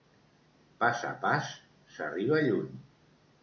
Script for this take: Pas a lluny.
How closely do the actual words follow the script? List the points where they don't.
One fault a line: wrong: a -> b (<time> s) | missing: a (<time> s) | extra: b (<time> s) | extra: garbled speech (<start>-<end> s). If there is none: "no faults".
extra: pas s'arriba (1.3 s)